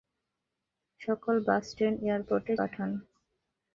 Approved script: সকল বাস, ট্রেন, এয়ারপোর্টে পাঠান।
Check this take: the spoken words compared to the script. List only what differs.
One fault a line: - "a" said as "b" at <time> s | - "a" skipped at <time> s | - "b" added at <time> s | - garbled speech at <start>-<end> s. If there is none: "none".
none